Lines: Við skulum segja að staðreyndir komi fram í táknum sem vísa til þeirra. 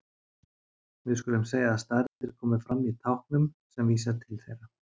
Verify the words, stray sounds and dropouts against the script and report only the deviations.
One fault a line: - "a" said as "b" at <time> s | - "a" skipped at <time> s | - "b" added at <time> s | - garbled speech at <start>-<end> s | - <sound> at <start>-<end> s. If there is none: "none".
- dropout at 2.1-2.2 s